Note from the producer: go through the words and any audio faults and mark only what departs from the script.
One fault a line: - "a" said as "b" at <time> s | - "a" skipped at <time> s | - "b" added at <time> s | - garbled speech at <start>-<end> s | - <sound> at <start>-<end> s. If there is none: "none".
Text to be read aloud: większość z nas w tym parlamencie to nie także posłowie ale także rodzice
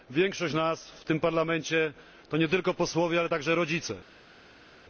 - "także" said as "tylko" at 2.5 s